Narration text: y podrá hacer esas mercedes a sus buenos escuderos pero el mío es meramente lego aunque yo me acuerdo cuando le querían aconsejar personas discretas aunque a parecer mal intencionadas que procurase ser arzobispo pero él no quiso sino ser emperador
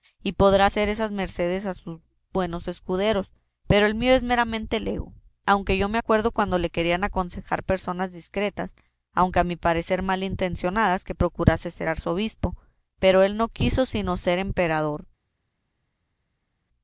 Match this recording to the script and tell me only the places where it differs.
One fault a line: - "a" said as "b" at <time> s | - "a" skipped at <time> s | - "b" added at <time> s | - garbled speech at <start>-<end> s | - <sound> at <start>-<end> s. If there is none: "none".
- "mi" added at 9.4 s